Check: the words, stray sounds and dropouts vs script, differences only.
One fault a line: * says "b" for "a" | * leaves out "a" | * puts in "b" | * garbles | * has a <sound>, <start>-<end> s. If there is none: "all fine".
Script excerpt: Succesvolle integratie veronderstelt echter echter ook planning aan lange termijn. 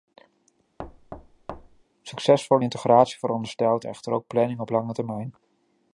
* has a thud, 0.8-1.8 s
* leaves out "echter"
* says "op" for "aan"